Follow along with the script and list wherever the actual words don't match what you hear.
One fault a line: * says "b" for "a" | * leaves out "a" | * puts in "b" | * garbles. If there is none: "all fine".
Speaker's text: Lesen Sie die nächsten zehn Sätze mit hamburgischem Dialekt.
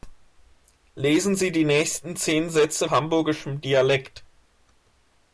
* leaves out "mit"